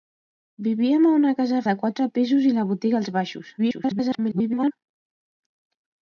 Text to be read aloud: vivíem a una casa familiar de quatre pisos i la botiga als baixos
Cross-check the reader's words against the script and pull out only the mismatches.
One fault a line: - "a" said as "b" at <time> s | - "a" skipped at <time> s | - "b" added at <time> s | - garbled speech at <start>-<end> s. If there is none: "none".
- "familiar" skipped at 1.6 s
- garbled speech at 3.6-4.7 s